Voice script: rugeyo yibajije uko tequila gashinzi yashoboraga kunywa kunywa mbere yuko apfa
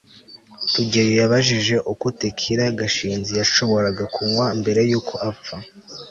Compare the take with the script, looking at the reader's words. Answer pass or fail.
fail